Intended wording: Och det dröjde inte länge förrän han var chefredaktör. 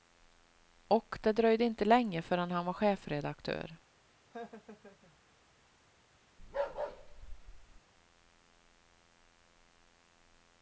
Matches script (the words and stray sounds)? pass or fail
fail